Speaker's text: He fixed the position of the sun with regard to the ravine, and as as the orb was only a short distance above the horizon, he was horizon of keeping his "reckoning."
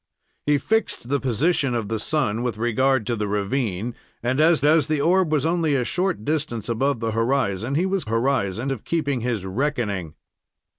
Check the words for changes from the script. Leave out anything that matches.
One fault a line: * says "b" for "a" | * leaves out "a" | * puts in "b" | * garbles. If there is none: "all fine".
all fine